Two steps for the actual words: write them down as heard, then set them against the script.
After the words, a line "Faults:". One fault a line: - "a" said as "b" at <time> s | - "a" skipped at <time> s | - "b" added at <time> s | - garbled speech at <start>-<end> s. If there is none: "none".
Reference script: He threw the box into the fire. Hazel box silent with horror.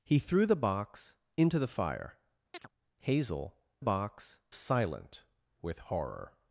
He threw the box into the fire. Hazel box silent with horror.
Faults:
none